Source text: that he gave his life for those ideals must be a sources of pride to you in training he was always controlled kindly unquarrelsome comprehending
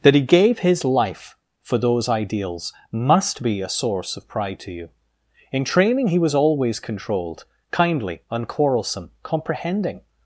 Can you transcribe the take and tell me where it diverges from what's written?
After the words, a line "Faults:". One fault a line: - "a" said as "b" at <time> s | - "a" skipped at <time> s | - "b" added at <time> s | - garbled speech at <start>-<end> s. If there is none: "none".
that he gave his life for those ideals must be a source of pride to you in training he was always controlled kindly unquarrelsome comprehending
Faults:
- "sources" said as "source" at 3.7 s